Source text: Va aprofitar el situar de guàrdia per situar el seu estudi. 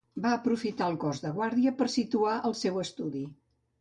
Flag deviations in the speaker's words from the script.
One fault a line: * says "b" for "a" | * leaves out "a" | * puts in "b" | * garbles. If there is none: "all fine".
* says "cos" for "situar"